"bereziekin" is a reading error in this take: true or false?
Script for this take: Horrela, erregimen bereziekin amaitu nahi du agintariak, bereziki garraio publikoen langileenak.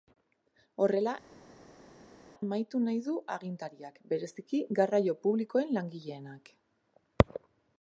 true